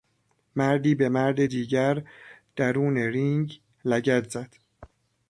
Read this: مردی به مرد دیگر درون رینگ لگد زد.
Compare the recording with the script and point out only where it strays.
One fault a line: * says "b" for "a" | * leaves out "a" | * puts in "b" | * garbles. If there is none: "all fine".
all fine